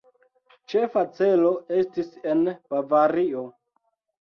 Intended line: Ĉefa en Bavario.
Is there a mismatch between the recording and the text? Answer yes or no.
yes